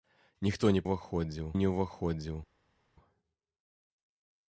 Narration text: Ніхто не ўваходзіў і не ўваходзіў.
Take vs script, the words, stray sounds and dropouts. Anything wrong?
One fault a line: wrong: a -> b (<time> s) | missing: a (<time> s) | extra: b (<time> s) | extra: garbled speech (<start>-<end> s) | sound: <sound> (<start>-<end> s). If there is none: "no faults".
no faults